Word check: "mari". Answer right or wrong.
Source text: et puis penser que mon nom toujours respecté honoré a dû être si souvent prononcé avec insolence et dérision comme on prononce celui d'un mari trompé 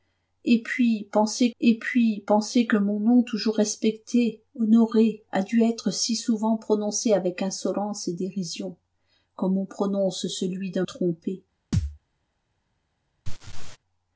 wrong